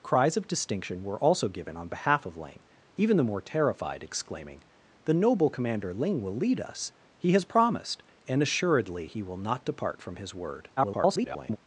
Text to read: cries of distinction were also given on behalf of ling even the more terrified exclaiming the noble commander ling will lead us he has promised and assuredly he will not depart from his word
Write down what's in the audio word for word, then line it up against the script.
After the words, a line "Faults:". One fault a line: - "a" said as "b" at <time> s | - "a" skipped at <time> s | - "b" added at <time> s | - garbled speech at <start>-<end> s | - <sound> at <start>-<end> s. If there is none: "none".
cries of distinction were also given on behalf of ling even the more terrified exclaiming the noble commander ling will lead us he has promised and assuredly he will not depart from his word [garbled]
Faults:
- garbled speech at 10.8-11.6 s